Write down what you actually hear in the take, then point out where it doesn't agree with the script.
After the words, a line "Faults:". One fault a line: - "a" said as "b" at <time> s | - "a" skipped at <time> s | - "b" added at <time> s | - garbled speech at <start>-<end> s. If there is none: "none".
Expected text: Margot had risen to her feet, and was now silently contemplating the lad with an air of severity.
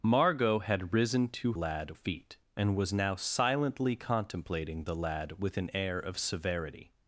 Margot had risen to lad feet, and was now silently contemplating the lad with an air of severity.
Faults:
- "her" said as "lad" at 1.5 s